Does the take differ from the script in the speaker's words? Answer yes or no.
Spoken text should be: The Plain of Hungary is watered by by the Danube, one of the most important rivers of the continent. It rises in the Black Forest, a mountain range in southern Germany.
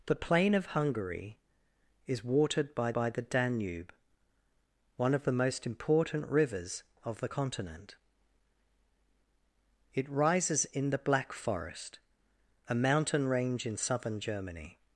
no